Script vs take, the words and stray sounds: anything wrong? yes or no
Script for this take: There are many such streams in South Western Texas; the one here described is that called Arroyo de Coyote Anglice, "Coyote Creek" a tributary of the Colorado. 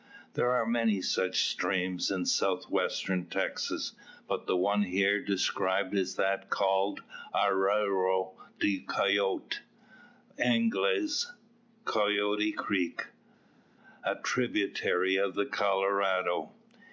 yes